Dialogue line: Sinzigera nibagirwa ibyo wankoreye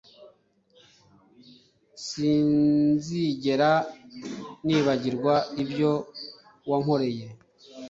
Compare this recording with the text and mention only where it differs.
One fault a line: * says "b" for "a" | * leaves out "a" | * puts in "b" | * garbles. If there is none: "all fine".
all fine